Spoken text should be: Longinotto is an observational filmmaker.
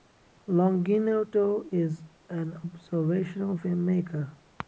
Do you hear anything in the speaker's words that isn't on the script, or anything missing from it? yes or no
no